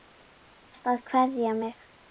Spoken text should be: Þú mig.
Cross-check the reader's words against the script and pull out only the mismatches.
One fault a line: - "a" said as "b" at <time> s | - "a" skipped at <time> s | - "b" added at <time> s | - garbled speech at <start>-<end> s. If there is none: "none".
- "varst að kveðja" added at 0.8 s